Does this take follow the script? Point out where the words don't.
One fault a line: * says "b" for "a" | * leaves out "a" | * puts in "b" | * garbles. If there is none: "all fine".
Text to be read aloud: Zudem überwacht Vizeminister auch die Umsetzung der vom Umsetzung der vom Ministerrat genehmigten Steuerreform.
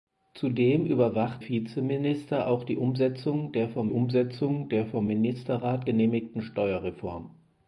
all fine